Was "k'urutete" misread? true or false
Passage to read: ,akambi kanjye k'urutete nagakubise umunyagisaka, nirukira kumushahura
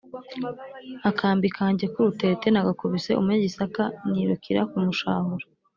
false